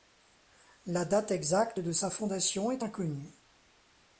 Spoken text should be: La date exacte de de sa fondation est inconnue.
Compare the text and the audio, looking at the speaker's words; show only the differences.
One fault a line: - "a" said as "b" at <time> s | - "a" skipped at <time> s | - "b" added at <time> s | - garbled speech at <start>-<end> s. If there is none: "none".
- "de" skipped at 1.9 s